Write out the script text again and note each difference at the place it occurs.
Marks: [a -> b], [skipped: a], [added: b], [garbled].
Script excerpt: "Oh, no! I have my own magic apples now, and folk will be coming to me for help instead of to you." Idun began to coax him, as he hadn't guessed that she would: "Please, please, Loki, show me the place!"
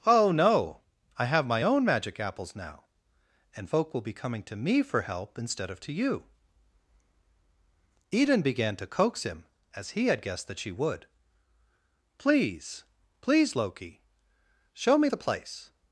"Oh, no! I have my own magic apples now, and folk will be coming to me for help instead of to you." Idun began to coax him, as he [hadn't -> had] guessed that she would: "Please, please, Loki, show me the place!"